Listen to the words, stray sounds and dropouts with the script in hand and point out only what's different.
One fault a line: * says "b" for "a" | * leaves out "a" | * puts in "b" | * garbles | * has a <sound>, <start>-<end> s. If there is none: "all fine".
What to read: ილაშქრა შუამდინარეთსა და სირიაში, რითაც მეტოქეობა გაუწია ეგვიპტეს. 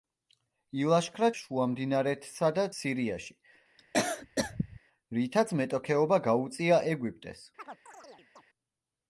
* has a cough, 3.8-4.8 s
* has a chirp, 7.6-8.4 s